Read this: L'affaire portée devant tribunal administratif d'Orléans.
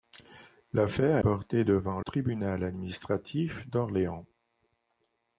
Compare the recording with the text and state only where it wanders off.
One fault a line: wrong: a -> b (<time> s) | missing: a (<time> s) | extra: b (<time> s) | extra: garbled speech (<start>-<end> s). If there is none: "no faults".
no faults